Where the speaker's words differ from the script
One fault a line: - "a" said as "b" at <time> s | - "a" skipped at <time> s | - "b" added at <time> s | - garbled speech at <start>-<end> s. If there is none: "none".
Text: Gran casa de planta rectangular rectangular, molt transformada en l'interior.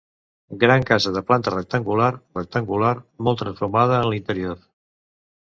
none